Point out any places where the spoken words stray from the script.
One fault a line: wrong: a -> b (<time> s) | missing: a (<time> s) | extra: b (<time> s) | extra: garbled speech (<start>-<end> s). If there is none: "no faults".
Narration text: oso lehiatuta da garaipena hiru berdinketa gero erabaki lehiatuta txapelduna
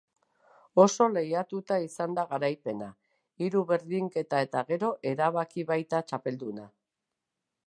extra: izan (1.9 s)
extra: eta (4.5 s)
wrong: lehiatuta -> baita (5.8 s)